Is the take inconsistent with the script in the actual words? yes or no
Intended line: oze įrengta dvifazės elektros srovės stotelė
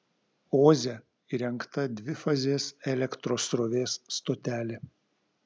no